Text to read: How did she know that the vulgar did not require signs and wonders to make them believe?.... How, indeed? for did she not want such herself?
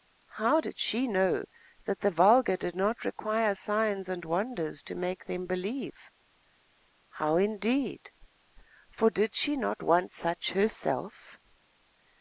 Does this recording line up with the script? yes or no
yes